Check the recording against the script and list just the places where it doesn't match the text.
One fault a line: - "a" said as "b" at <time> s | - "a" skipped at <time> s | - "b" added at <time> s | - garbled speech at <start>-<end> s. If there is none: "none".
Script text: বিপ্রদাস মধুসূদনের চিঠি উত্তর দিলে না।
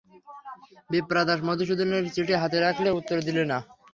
- "হাতে রাখলে" added at 2.4 s